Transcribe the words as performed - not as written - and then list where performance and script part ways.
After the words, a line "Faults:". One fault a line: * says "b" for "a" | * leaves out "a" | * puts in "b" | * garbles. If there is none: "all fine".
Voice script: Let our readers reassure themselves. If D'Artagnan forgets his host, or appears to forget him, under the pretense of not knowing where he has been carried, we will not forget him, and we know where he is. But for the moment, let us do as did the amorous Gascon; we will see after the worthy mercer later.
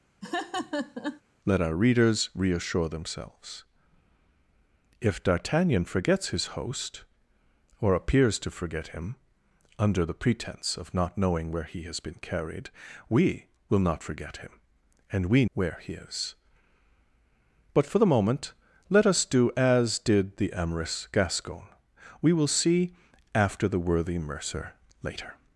Let our readers reassure themselves. If D'Artagnan forgets his host, or appears to forget him, under the pretense of not knowing where he has been carried, we will not forget him, and we where he is. But for the moment, let us do as did the amorous Gascon; we will see after the worthy mercer later.
Faults:
* leaves out "know"